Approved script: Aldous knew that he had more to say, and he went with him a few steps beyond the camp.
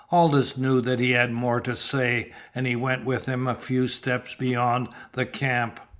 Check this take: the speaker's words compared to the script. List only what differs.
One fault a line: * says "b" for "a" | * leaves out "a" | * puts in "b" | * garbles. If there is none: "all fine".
all fine